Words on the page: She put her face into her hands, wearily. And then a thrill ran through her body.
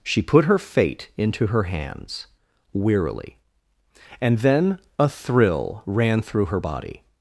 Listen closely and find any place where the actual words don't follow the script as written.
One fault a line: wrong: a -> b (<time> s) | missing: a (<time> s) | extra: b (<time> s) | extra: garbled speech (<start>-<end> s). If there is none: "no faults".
wrong: face -> fate (0.6 s)